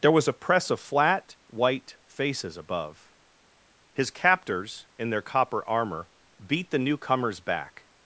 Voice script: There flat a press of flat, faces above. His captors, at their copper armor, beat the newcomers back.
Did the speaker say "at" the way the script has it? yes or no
no